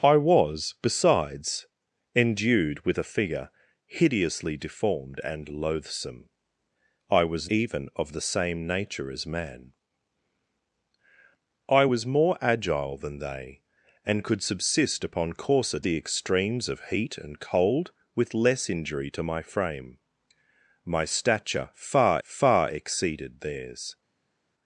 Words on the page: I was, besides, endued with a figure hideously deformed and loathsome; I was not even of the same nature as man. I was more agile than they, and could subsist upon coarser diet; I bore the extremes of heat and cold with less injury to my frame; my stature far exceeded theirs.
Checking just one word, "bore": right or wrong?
wrong